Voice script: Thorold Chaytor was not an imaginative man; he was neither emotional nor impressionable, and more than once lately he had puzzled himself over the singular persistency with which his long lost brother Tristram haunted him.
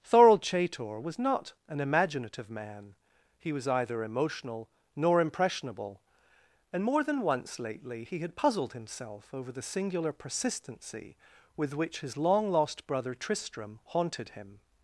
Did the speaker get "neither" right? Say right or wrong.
wrong